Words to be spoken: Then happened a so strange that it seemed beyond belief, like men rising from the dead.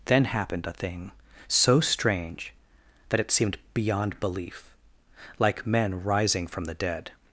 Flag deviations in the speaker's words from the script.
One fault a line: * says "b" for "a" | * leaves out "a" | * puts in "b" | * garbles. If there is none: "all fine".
* puts in "thing"